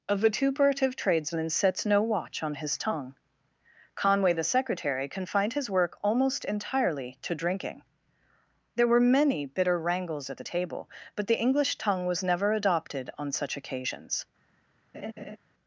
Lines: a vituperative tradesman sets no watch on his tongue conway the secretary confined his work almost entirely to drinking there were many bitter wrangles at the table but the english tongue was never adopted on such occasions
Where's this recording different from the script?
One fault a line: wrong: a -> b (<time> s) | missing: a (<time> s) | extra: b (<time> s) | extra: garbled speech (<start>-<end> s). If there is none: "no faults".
no faults